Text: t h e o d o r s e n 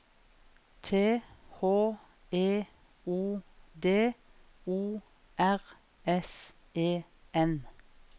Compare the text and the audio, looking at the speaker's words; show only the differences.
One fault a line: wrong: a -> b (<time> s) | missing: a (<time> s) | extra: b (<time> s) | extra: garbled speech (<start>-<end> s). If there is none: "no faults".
no faults